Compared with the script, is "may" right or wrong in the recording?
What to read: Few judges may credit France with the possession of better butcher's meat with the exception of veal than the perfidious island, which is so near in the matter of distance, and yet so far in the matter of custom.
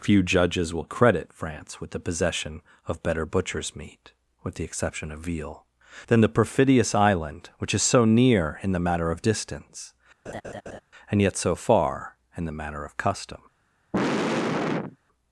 wrong